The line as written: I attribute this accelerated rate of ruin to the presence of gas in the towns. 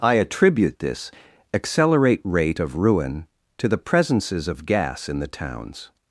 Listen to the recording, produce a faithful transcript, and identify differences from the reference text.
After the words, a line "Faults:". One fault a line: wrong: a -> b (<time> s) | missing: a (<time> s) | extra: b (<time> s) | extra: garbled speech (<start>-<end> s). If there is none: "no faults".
I attribute this accelerate rate of ruin to the presences of gas in the towns.
Faults:
wrong: accelerated -> accelerate (1.5 s)
wrong: presence -> presences (3.8 s)